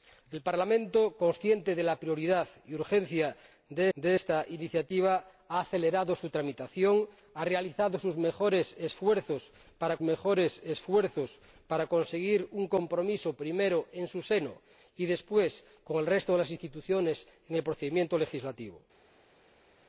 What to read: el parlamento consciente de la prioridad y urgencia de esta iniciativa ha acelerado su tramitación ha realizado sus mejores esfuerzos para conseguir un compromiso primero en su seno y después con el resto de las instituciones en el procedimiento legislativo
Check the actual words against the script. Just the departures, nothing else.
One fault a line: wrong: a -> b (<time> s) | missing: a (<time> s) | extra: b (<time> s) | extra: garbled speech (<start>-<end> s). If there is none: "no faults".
extra: de (4.0 s)
extra: mejores esfuerzos para (10.0 s)